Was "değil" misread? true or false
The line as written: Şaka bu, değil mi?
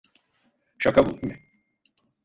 true